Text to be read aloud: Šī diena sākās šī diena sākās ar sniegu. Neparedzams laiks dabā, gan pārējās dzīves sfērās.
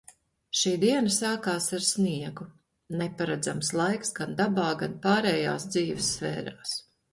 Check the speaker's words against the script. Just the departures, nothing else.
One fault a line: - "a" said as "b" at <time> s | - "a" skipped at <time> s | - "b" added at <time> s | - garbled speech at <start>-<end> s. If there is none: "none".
- "šī diena sākās" skipped at 1.7 s
- "gan" added at 4.2 s